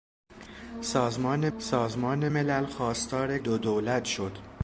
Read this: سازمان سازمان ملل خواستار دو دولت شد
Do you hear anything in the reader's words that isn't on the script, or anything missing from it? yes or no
no